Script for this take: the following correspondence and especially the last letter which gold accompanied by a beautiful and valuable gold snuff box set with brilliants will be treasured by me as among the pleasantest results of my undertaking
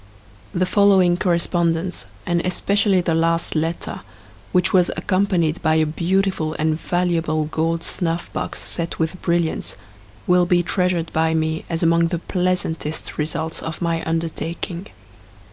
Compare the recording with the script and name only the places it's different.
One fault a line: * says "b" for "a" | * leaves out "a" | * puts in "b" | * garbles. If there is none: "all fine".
* says "was" for "gold"